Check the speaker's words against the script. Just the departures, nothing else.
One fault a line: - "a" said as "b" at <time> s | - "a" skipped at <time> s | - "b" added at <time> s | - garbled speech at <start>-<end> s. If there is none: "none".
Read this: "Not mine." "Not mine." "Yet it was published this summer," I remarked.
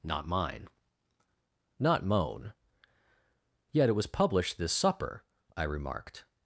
- "mine" said as "moan" at 2.0 s
- "summer" said as "supper" at 4.7 s